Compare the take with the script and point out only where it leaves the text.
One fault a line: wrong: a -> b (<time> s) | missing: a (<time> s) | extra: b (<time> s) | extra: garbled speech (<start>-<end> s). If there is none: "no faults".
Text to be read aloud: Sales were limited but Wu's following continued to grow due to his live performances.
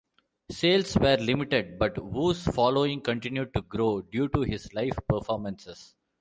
no faults